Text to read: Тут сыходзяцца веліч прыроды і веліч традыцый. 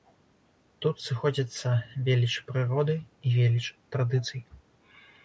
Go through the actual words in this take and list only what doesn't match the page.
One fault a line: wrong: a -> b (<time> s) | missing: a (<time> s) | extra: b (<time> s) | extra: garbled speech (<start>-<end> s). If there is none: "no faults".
no faults